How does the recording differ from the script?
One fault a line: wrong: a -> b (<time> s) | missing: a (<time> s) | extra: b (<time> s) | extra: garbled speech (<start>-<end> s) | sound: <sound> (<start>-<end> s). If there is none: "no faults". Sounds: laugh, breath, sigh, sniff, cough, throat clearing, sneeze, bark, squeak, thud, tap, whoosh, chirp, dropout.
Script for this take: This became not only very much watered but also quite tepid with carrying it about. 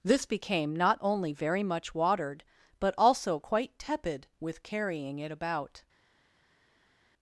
no faults